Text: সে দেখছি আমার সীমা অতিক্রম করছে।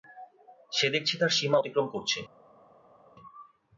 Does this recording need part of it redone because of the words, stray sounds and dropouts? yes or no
yes